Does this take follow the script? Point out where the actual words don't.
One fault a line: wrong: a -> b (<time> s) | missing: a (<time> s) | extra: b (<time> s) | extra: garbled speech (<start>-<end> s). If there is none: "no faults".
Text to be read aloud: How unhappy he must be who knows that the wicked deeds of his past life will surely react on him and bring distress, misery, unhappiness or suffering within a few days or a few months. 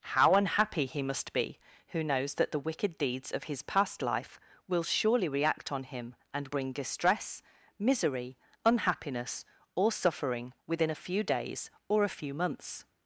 no faults